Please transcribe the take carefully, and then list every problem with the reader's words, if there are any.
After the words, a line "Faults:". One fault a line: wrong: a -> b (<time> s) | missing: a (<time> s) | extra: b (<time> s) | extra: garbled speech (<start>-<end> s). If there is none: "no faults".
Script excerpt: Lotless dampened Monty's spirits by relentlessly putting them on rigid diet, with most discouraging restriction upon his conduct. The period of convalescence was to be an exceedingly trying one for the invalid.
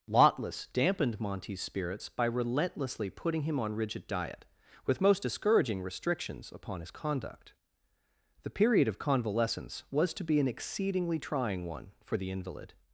Lotless dampened Monty's spirits by relentlessly putting him on rigid diet, with most discouraging restrictions upon his conduct. The period of convalescence was to be an exceedingly trying one for the invalid.
Faults:
wrong: them -> him (3.4 s)
wrong: restriction -> restrictions (5.8 s)